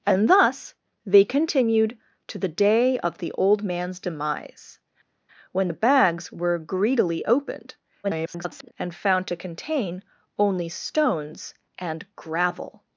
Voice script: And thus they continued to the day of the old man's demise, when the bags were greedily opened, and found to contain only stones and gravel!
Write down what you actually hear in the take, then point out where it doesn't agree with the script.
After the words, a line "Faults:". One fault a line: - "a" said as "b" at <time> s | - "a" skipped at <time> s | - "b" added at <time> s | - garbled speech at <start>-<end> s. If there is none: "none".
And thus they continued to the day of the old man's demise, when the bags were greedily opened, [garbled] and found to contain only stones and gravel!
Faults:
- garbled speech at 8.0-8.7 s